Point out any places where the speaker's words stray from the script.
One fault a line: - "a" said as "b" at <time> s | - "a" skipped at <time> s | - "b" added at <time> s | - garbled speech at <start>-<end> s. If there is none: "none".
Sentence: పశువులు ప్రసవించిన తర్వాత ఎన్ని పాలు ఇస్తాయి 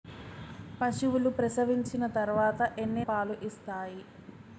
none